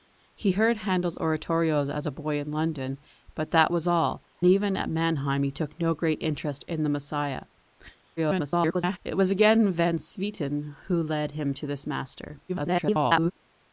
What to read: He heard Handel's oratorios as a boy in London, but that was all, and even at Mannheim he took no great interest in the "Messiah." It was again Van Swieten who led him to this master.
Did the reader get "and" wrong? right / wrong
wrong